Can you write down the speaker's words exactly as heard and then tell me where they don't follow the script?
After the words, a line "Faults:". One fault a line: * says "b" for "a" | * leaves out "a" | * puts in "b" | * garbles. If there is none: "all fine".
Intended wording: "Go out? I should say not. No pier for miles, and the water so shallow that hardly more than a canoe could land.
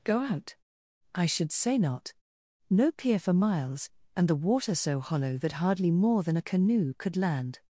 "Go out? I should say not. No pier for miles, and the water so hollow that hardly more than a canoe could land.
Faults:
* says "hollow" for "shallow"